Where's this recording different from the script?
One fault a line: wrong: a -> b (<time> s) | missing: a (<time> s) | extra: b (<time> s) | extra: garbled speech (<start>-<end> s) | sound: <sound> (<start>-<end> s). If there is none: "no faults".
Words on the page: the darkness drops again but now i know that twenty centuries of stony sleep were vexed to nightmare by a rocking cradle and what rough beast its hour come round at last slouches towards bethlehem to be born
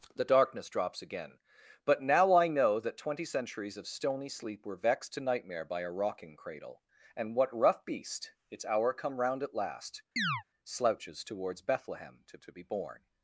sound: chirp (10.2-10.4 s)
extra: to (12.4 s)